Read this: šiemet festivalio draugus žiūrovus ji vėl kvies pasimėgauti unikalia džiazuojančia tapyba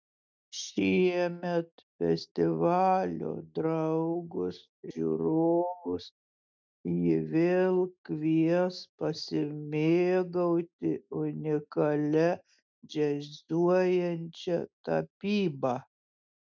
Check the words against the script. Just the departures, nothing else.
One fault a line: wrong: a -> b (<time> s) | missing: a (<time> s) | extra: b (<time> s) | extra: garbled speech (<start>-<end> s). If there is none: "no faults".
no faults